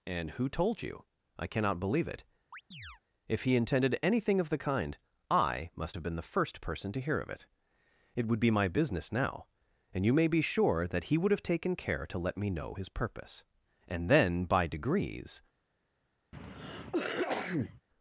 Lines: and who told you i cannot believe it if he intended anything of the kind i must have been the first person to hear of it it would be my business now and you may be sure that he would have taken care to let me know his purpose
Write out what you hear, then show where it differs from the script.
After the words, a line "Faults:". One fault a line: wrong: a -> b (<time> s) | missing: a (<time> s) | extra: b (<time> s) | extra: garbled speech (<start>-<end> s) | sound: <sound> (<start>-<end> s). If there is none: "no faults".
and who told you i cannot believe it if he intended anything of the kind i must have been the first person to hear of it it would be my business now and you may be sure that he would have taken care to let me know his purpose and then by degrees
Faults:
sound: chirp (2.5-3.0 s)
extra: and then by degrees (13.9 s)
sound: cough (16.3-17.8 s)